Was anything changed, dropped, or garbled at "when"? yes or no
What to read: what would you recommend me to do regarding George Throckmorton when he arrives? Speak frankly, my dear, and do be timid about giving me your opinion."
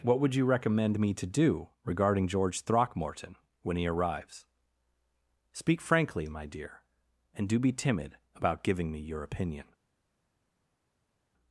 no